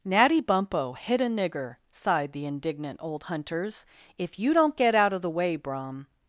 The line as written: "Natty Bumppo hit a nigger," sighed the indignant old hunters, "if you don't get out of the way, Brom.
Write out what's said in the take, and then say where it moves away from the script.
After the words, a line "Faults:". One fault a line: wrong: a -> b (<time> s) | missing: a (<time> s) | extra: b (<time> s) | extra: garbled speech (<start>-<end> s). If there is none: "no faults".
"Natty Bumppo hit a nigger," sighed the indignant old hunters, "if you don't get out of the way, Brom.
Faults:
no faults